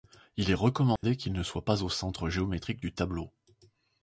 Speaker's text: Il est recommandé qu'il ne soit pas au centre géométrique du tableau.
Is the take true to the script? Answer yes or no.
yes